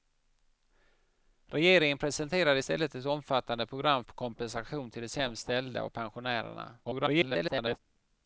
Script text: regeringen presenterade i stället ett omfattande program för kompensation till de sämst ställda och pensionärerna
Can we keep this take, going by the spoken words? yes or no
no